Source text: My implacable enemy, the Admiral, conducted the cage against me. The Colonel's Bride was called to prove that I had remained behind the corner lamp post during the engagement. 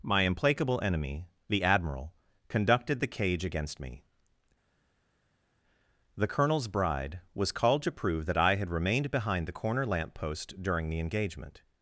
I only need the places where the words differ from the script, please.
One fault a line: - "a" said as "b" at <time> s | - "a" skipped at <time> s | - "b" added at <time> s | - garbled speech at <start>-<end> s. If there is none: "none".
none